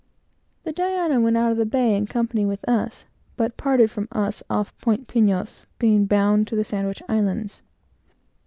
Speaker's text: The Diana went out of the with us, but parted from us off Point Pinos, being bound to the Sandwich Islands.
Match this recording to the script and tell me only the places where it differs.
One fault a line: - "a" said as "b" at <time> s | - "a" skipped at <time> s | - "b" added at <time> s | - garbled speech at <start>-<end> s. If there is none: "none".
- "bay in company" added at 1.7 s